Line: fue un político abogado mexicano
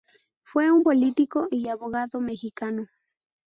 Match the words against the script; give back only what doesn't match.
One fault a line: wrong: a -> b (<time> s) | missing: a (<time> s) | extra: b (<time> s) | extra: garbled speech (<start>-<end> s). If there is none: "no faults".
extra: y (1.5 s)